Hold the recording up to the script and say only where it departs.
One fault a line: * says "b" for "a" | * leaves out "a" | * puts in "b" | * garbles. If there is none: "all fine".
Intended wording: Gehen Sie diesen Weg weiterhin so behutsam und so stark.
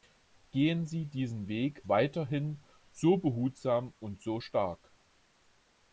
all fine